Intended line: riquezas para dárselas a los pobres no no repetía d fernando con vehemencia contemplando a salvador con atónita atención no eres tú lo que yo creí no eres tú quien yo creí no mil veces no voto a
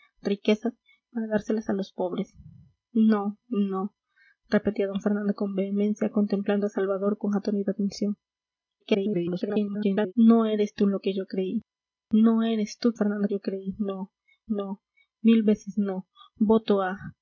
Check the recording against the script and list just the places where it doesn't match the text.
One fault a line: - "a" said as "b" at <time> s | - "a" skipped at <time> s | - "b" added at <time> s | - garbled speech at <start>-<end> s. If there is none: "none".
- garbled speech at 8.8-10.1 s
- "quien" said as "fernando" at 13.0 s
- "no" added at 14.5 s